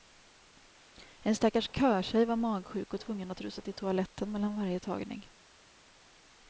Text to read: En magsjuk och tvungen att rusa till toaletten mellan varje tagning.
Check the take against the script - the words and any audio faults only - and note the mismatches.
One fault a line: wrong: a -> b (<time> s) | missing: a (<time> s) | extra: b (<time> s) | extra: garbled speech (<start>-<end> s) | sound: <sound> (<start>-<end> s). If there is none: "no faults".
extra: stackars körtjej var (1.4 s)